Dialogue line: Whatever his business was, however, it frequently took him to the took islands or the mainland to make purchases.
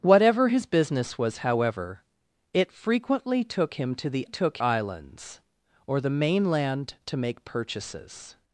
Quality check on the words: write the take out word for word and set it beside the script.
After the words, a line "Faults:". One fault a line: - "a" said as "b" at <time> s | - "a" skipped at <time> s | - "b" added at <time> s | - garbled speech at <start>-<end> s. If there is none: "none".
Whatever his business was, however, it frequently took him to the took islands or the mainland to make purchases.
Faults:
none